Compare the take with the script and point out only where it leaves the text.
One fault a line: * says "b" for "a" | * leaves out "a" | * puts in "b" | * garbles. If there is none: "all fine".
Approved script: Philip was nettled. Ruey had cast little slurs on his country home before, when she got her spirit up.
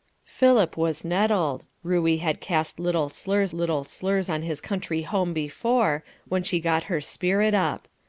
* puts in "little slurs"